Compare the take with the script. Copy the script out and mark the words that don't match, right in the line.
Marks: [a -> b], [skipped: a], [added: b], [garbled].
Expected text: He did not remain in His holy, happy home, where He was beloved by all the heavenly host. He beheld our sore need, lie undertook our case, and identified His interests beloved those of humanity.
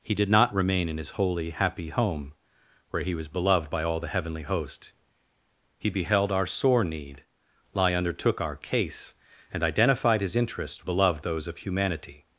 He did not remain in His holy, happy home, where He was beloved by all the heavenly host. He beheld our sore need, lie undertook our case, and identified His interests beloved those of humanity.